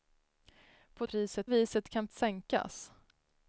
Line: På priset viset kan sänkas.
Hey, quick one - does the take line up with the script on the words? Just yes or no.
yes